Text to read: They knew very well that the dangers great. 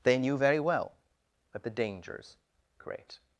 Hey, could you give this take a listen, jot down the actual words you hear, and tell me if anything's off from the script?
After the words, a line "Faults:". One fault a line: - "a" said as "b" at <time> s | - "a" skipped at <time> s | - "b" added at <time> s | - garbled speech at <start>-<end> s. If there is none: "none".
They knew very well that the dangers great.
Faults:
none